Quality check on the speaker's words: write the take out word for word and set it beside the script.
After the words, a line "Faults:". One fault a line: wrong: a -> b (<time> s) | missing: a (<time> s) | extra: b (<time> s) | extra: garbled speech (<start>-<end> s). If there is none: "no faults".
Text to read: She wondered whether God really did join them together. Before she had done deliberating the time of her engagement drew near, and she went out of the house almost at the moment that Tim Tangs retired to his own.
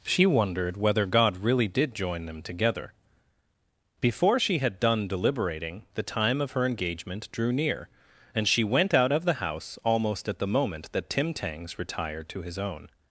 She wondered whether God really did join them together. Before she had done deliberating the time of her engagement drew near, and she went out of the house almost at the moment that Tim Tangs retired to his own.
Faults:
no faults